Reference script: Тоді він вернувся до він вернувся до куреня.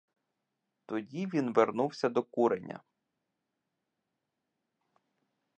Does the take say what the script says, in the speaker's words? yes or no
no